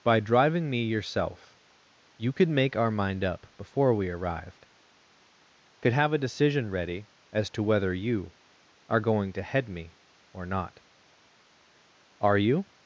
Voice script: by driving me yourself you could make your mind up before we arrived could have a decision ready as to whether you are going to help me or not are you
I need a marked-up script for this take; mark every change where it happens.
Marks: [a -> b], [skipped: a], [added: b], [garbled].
by driving me yourself you could make [your -> our] mind up before we arrived could have a decision ready as to whether you are going to [help -> head] me or not are you